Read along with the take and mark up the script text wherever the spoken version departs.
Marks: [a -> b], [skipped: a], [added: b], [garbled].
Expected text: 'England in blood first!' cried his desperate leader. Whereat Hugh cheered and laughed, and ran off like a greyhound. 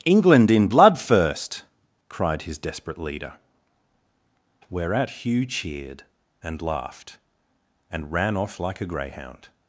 'England in blood first!' cried his desperate leader. Whereat Hugh cheered and laughed, and ran off like a greyhound.